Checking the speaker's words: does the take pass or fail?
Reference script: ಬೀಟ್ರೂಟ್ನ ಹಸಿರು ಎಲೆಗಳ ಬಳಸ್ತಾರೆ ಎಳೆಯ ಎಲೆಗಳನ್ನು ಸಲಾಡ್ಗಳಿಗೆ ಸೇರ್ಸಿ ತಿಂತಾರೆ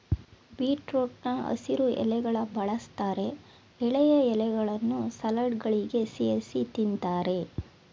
pass